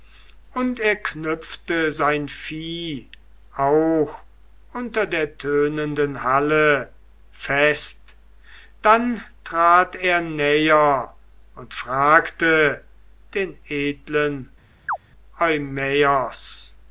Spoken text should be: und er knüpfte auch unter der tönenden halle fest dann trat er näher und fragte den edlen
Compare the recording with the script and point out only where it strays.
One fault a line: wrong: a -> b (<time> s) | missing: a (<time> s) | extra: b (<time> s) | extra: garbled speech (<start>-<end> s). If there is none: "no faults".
extra: sein vieh (1.9 s)